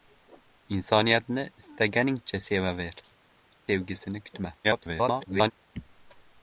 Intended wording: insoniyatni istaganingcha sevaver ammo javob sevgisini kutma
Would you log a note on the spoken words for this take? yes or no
yes